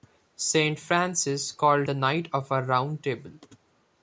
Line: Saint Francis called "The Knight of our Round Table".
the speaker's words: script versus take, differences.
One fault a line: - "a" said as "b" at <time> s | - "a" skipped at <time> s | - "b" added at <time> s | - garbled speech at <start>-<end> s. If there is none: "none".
none